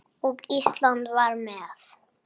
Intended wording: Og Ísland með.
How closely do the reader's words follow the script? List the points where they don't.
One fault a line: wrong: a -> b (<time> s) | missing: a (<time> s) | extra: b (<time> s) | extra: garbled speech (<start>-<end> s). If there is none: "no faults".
extra: var (1.2 s)